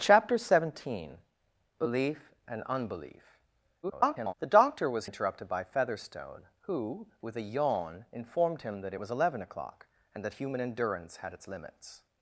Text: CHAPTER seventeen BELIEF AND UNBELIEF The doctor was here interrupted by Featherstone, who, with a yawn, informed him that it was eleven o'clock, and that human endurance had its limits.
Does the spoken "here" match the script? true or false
false